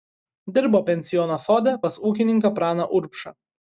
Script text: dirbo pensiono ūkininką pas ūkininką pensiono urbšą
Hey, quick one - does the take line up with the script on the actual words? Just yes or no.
no